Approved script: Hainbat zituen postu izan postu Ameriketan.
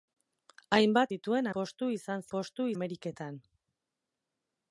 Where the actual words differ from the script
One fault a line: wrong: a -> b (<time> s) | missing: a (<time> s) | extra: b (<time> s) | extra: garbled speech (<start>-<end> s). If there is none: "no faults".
no faults